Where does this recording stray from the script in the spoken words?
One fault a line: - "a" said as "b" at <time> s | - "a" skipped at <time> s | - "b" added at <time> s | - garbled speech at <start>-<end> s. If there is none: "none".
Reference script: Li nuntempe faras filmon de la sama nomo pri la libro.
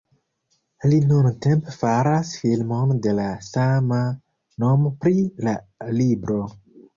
none